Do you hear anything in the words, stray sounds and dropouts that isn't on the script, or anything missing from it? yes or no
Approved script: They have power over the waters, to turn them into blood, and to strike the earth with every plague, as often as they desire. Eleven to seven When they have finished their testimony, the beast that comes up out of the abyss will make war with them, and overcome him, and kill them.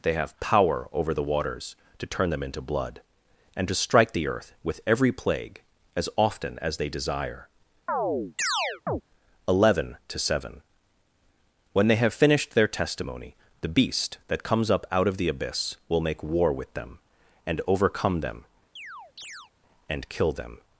yes